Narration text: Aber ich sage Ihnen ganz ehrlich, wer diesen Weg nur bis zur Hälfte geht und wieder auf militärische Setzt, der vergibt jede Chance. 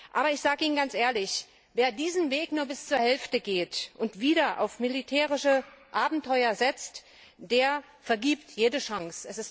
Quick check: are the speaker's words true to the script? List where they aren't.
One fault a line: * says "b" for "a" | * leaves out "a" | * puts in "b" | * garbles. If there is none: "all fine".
* puts in "Abenteuer"